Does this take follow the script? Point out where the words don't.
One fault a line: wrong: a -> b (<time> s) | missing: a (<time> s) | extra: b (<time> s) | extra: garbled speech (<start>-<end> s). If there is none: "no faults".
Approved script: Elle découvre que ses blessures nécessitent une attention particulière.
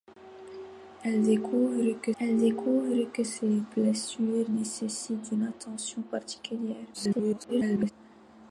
extra: elle découvre que (2.2 s)
extra: garbled speech (6.9-7.9 s)